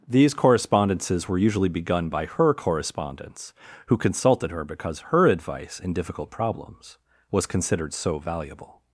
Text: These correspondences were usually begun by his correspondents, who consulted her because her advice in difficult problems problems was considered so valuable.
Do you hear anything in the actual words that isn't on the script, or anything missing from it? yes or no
yes